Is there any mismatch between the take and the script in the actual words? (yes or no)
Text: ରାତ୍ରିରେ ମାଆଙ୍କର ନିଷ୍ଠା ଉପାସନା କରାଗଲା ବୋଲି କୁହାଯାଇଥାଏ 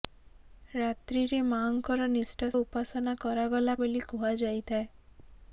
no